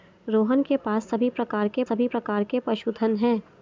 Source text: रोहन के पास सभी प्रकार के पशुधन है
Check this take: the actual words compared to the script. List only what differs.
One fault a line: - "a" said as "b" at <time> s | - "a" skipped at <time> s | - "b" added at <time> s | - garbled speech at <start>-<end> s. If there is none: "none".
- "सभी प्रकार के" added at 1.9 s